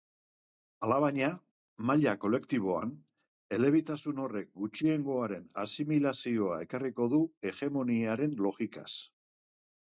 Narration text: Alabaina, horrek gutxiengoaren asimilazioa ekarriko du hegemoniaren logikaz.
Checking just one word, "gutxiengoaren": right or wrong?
right